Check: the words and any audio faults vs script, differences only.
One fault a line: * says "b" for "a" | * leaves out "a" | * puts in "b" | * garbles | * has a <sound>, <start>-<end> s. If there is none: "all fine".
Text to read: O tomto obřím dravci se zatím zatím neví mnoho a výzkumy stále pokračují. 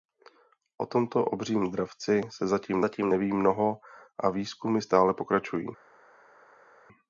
all fine